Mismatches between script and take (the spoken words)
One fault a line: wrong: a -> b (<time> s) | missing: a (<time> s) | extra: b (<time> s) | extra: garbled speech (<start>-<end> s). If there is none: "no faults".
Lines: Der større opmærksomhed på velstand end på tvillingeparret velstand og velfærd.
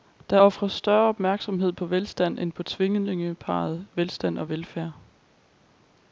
extra: ofres (0.4 s)